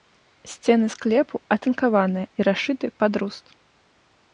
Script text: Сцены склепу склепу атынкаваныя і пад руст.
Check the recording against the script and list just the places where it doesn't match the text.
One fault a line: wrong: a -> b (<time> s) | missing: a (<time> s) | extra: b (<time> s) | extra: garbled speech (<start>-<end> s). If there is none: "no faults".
missing: склепу (1.4 s)
extra: расшыты (2.5 s)